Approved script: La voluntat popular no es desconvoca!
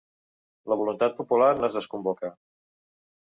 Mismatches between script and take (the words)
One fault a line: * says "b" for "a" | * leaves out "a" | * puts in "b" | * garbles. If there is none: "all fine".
all fine